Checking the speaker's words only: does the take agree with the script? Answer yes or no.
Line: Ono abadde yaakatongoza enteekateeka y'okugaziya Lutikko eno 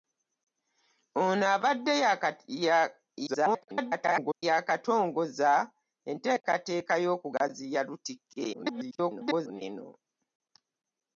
no